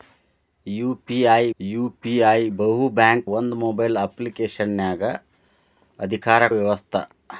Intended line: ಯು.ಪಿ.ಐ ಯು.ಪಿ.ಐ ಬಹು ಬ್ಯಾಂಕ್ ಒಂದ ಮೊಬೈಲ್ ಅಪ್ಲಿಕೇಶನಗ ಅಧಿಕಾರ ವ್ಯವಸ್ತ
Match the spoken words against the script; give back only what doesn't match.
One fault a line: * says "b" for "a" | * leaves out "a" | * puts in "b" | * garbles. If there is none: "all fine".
all fine